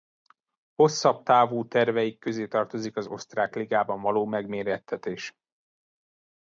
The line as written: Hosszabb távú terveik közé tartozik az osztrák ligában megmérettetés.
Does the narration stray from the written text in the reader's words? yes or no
yes